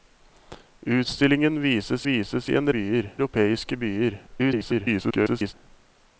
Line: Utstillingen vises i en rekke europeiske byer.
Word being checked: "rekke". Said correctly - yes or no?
no